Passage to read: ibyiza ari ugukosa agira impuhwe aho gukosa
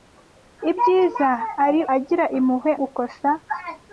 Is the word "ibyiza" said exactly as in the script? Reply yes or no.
yes